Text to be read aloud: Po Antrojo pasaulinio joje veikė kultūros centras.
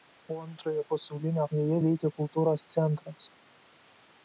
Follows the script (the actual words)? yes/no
yes